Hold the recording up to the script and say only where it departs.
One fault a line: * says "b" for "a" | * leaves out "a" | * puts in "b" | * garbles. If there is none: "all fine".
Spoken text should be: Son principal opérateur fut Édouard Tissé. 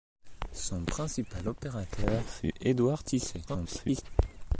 * garbles